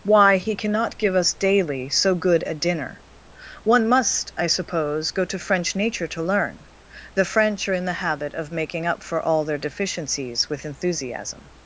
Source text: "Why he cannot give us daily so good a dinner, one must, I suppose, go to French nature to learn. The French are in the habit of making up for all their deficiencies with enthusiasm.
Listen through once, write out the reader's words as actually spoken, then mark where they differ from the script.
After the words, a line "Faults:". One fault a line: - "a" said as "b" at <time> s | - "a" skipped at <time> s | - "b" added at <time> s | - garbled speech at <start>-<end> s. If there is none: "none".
"Why he cannot give us daily so good a dinner, one must, I suppose, go to French nature to learn. The French are in the habit of making up for all their deficiencies with enthusiasm.
Faults:
none